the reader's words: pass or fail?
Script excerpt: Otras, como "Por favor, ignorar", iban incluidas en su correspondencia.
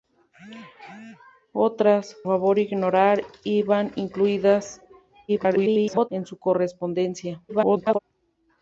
fail